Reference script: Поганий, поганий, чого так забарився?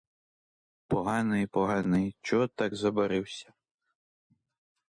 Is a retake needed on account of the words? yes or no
no